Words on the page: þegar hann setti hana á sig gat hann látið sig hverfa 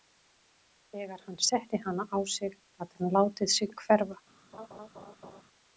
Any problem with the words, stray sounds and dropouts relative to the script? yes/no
yes